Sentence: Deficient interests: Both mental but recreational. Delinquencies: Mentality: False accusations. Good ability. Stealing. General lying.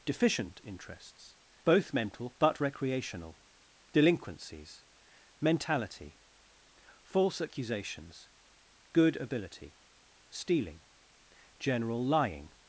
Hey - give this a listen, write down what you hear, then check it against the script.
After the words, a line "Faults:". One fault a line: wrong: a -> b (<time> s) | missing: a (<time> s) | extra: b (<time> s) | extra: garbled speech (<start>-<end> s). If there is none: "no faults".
Deficient interests: Both mental but recreational. Delinquencies: Mentality: False accusations. Good ability. Stealing. General lying.
Faults:
no faults